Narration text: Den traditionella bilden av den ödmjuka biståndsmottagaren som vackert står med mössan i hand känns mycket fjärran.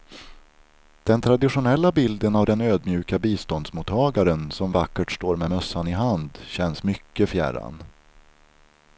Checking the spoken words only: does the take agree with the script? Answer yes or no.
yes